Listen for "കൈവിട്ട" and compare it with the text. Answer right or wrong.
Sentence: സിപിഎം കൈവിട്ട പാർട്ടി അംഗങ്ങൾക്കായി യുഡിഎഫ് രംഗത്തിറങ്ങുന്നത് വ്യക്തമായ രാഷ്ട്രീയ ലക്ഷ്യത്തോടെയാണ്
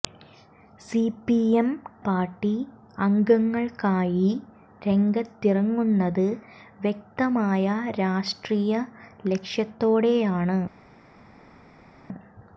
wrong